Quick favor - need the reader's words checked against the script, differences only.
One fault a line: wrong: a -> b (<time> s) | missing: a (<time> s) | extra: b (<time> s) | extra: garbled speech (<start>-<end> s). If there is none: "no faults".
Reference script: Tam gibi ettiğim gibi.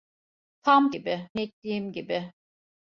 no faults